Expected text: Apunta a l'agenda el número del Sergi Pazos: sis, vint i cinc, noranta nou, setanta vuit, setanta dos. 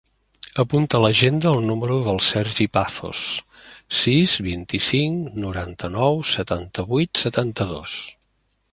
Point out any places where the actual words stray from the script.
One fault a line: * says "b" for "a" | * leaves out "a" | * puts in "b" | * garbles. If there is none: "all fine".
all fine